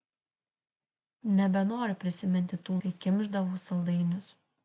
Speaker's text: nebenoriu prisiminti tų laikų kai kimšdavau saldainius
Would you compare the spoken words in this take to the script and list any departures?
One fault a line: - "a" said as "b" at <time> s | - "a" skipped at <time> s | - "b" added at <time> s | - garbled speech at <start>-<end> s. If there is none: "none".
- "laikų" skipped at 2.8 s